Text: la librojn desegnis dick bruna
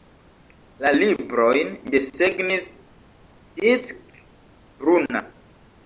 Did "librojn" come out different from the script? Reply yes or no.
no